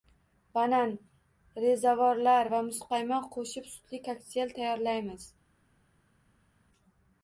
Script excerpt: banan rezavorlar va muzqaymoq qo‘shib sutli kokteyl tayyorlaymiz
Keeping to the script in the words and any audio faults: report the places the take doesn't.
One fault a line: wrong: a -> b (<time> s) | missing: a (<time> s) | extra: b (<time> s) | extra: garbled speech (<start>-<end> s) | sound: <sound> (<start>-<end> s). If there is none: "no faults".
no faults